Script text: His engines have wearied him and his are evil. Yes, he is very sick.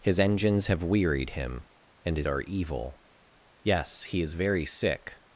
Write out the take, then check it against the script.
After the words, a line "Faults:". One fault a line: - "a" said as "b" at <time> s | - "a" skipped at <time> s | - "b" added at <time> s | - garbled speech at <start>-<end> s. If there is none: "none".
His engines have wearied him and his are evil. Yes, he is very sick.
Faults:
none